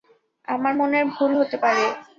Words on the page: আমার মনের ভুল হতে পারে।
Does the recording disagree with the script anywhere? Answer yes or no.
no